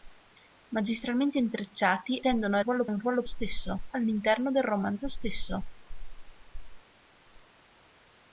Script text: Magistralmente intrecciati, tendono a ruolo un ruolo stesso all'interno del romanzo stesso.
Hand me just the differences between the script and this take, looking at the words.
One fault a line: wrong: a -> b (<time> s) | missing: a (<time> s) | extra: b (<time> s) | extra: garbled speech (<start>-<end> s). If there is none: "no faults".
no faults